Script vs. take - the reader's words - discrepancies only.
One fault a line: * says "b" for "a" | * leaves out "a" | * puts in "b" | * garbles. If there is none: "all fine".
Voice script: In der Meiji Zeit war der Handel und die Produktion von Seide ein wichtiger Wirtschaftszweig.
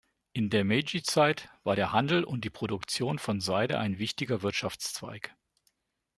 all fine